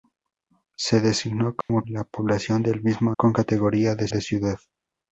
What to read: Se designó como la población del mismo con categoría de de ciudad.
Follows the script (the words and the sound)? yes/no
no